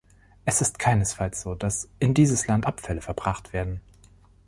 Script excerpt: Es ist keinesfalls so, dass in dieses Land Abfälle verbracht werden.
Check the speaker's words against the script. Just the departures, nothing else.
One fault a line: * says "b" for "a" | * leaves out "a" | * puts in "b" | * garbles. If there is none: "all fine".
all fine